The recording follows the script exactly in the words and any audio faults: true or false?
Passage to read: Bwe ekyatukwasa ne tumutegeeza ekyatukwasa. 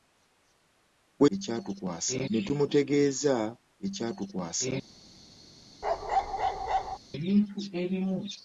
false